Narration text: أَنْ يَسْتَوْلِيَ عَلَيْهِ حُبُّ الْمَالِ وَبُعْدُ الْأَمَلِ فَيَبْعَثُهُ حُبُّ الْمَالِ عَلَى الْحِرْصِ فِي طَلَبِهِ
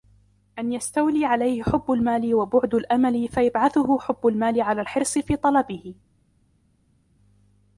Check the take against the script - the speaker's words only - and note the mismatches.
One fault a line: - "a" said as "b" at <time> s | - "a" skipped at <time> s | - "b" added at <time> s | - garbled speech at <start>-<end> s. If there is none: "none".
none